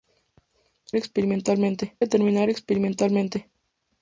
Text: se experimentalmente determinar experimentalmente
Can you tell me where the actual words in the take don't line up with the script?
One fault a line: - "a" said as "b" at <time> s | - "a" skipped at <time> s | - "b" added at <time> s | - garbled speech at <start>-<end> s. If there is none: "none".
none